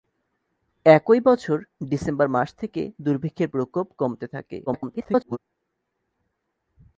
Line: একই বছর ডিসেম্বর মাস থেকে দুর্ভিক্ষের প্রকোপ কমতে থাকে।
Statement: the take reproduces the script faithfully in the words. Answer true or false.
false